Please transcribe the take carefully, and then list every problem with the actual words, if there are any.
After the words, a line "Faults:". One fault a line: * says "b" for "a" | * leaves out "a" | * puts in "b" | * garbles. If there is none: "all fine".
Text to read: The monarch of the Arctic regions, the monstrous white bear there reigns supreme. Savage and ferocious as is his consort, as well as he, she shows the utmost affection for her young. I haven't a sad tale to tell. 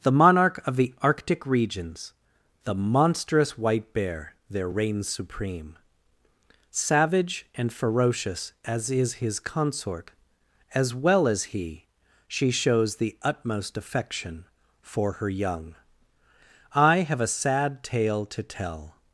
The monarch of the Arctic regions, the monstrous white bear there reigns supreme. Savage and ferocious as is his consort, as well as he, she shows the utmost affection for her young. I have a sad tale to tell.
Faults:
* says "have" for "haven't"